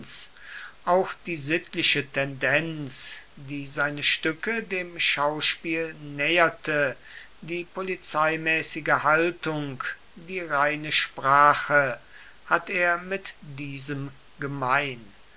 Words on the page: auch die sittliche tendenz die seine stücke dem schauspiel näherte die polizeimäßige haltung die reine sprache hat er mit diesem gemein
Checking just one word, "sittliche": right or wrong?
right